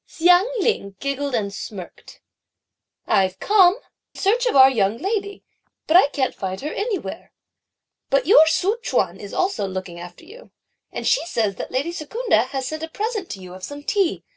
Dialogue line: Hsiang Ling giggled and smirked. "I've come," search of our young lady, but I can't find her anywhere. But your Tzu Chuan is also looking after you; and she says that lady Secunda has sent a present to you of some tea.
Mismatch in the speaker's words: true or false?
false